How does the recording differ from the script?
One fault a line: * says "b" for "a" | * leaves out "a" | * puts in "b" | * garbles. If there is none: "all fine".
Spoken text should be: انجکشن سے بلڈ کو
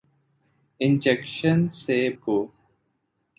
* leaves out "بلڈ"